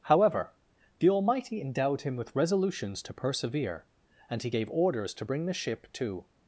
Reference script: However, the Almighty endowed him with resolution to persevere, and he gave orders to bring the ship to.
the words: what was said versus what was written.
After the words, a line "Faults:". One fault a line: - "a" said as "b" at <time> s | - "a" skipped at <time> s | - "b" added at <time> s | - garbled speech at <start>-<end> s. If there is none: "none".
However, the Almighty endowed him with resolutions to persevere, and he gave orders to bring the ship to.
Faults:
- "resolution" said as "resolutions" at 2.3 s